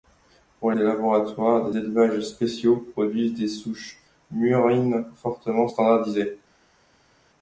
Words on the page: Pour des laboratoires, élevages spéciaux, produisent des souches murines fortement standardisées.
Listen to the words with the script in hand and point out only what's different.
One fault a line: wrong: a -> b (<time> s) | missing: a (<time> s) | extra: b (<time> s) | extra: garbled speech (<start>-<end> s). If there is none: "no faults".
no faults